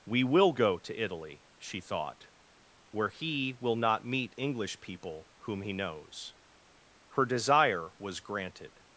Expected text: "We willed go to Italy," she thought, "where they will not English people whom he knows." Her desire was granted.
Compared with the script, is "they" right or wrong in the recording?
wrong